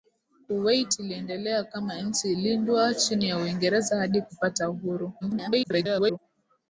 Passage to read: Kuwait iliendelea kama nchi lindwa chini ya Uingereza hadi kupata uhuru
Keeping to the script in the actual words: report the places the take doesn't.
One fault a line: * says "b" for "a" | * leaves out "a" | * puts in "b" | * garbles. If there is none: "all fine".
* garbles